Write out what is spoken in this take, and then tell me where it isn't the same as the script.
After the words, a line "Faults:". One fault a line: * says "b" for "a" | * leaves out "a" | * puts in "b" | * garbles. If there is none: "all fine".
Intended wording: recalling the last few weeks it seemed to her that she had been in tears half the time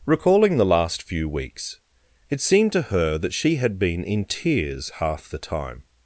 recalling the last few weeks it seemed to her that she had been in tears half the time
Faults:
all fine